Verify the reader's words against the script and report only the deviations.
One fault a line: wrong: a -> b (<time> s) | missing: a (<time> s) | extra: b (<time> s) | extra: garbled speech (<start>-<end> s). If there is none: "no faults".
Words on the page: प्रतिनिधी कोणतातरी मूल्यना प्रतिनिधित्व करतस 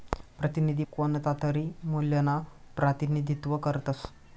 no faults